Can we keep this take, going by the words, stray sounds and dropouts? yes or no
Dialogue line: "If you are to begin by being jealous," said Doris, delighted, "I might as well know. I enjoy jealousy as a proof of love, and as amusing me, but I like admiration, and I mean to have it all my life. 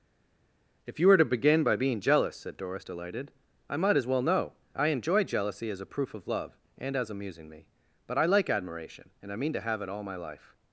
no